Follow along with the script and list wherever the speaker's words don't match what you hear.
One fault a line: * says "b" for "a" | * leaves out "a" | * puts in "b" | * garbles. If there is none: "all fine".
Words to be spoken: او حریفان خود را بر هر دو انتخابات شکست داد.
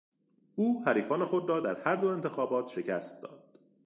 * says "در" for "بر"